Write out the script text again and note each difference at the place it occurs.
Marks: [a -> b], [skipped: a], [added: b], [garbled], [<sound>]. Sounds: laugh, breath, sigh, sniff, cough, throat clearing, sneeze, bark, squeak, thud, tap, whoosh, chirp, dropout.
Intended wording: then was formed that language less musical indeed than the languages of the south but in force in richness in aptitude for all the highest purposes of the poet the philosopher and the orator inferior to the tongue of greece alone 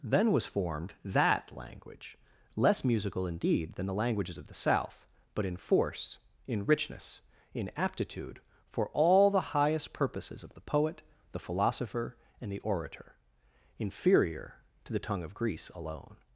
then was formed that language less musical indeed than the languages of the south but in force in richness in aptitude for all the highest purposes of the poet the philosopher and the orator inferior to the tongue of greece alone